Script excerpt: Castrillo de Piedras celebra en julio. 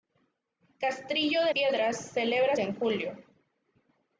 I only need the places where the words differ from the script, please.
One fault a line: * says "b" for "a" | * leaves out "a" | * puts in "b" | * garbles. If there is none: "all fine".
all fine